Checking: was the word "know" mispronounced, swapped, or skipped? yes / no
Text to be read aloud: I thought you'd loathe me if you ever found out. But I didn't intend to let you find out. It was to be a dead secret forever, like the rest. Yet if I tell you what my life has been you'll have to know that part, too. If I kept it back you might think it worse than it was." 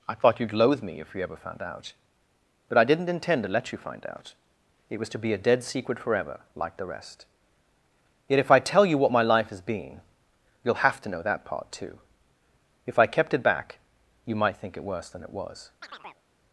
no